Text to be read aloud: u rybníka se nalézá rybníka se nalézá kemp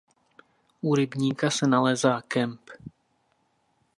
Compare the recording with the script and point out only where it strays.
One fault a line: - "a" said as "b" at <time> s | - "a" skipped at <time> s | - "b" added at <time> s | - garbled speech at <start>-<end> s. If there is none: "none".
- "rybníka se nalézá" skipped at 2.2 s